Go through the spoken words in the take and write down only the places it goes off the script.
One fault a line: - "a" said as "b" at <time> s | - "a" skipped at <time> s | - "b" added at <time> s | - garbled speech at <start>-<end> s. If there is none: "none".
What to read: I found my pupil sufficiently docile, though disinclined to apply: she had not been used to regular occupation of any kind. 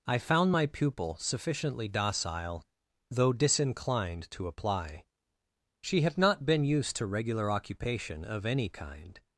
none